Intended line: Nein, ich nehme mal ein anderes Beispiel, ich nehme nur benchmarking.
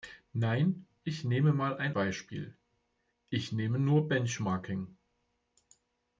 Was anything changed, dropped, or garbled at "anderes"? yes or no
yes